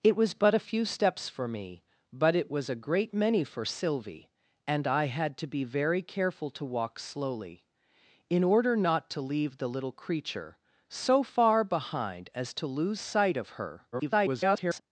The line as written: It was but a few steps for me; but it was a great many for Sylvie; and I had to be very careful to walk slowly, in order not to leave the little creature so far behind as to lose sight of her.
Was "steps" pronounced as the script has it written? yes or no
yes